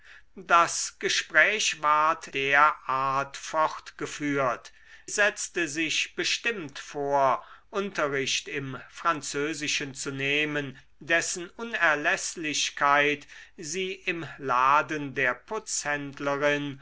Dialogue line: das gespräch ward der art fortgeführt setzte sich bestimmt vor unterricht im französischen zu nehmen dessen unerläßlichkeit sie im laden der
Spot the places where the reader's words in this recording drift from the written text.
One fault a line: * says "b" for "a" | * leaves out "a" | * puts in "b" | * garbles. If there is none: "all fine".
all fine